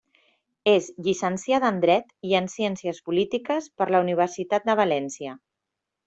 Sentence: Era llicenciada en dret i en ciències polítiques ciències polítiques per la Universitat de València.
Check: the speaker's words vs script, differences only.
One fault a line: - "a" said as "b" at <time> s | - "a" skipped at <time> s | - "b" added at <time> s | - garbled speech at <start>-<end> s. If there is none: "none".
- "Era" said as "És" at 0.7 s
- "ciències polítiques" skipped at 3.7 s